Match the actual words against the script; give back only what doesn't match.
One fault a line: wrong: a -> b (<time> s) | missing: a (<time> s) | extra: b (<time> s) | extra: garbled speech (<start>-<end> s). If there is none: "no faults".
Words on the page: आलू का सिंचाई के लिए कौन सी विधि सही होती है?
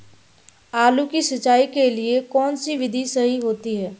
wrong: का -> की (1.1 s)